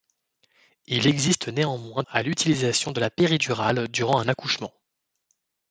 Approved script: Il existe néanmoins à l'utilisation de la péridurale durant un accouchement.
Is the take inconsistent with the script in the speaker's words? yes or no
no